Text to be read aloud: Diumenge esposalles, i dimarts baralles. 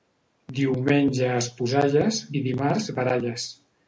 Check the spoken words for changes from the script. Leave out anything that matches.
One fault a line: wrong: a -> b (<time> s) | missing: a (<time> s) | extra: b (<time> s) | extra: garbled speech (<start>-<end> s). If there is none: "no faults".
no faults